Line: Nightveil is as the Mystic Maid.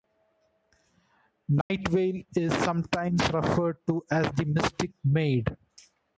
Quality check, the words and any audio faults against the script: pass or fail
fail